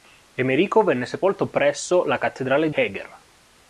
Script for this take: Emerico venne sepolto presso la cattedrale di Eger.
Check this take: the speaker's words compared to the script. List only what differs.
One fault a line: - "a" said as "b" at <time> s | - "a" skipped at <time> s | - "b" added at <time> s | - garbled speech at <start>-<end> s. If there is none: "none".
- "di" skipped at 2.7 s